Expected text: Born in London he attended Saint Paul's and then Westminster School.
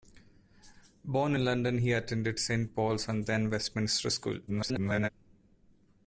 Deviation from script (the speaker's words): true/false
true